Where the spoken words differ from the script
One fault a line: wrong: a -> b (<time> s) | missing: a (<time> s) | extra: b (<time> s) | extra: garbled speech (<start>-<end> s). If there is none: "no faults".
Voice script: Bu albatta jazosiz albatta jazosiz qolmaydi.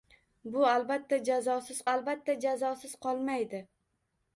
no faults